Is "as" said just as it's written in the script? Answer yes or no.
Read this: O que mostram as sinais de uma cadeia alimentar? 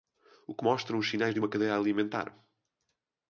no